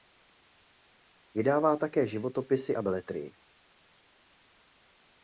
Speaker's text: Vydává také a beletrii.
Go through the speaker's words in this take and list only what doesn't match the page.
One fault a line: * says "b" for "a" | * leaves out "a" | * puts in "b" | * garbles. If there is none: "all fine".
* puts in "životopisy"